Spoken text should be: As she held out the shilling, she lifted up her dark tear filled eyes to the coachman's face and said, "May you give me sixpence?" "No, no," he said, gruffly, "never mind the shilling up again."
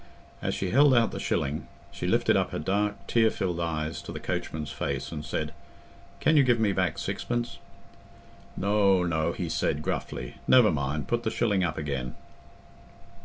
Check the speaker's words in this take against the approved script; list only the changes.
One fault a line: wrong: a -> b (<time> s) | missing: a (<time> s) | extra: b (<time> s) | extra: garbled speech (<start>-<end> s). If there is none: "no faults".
wrong: May -> Can (6.2 s)
extra: back (6.7 s)
extra: put (11.1 s)